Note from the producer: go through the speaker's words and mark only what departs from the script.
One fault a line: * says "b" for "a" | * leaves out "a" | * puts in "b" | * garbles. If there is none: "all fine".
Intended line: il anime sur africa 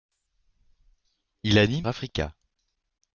* leaves out "sur"